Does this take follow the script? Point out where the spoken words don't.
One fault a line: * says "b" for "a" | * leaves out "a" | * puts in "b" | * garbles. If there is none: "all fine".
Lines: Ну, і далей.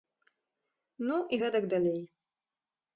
* puts in "гэтак"